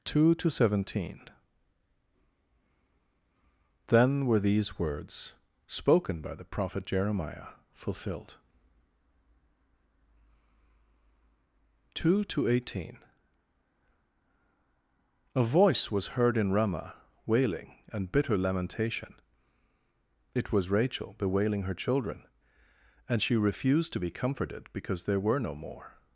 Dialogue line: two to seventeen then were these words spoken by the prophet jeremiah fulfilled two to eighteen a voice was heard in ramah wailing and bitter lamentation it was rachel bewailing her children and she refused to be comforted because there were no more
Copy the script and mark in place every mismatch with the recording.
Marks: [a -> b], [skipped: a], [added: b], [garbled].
two to seventeen then were these words spoken by the prophet jeremiah fulfilled two to eighteen a voice was heard in ramah wailing and bitter lamentation it was rachel bewailing her children and she refused to be comforted because there were no more